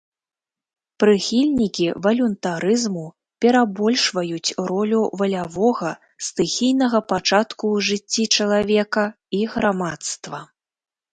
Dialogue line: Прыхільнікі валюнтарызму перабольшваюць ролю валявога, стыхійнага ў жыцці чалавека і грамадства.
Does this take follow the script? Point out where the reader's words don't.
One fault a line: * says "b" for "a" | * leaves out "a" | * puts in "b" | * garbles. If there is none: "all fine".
* puts in "пачатку"